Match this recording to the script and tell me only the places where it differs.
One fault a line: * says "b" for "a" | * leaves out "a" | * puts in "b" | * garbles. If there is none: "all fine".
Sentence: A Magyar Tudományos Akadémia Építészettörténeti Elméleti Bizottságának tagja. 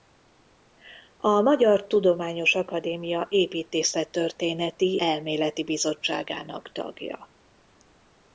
all fine